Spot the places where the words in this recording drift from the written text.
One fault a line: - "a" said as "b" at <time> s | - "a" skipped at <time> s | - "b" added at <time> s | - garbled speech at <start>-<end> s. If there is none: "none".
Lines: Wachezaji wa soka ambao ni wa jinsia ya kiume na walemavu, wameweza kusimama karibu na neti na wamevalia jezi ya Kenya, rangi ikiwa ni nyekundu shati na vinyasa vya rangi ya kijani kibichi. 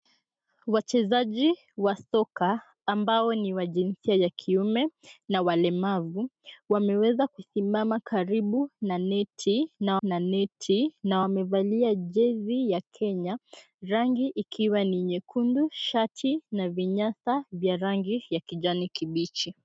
- "na neti na" added at 10.0 s